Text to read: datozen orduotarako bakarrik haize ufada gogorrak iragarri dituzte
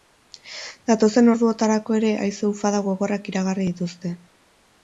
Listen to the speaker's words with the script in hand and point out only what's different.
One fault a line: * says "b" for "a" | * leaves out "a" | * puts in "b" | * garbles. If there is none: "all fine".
* says "ere" for "bakarrik"